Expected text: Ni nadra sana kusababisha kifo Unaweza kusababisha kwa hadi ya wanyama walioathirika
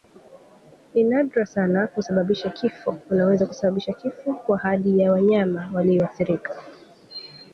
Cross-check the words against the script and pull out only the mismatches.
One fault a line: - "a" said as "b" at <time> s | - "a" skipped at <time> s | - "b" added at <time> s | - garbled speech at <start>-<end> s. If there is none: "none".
- "kifo" added at 3.9 s